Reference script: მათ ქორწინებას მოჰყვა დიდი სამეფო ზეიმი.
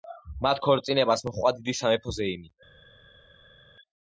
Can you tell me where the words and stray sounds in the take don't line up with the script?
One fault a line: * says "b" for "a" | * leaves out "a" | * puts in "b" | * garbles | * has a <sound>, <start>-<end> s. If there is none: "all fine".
all fine